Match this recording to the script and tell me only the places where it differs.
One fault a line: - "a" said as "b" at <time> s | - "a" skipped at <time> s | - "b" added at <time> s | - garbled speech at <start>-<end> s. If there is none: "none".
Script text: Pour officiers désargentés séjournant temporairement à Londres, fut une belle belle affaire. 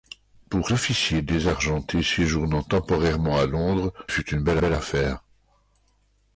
none